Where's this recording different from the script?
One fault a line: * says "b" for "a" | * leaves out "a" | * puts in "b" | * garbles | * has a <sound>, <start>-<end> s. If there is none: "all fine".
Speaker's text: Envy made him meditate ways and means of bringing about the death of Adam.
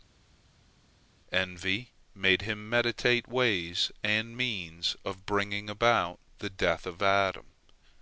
all fine